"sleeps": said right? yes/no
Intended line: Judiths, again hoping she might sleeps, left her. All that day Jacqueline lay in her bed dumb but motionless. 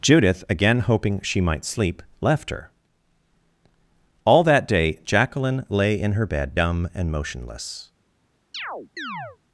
no